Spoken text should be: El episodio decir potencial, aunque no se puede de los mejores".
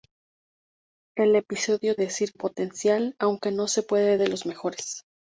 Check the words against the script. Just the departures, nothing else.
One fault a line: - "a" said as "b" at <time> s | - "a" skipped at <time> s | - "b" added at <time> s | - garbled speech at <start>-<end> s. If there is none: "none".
none